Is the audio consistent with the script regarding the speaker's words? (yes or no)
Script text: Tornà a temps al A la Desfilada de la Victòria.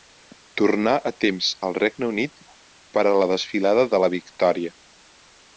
no